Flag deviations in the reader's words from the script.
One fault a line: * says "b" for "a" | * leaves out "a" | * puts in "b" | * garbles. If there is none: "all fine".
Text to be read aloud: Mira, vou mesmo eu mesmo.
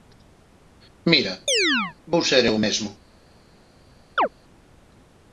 * says "ser" for "mesmo"